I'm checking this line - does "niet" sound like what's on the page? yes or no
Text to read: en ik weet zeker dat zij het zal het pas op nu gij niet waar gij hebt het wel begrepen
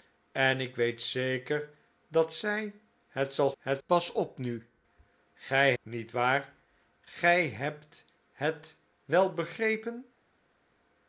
yes